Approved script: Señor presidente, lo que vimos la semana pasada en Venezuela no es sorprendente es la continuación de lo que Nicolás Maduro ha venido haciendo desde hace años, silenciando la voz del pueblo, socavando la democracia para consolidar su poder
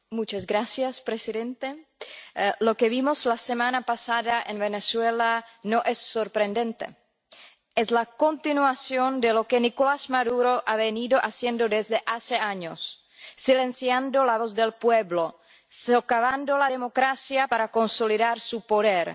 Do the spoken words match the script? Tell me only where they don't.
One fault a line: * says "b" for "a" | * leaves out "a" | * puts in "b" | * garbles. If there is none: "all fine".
all fine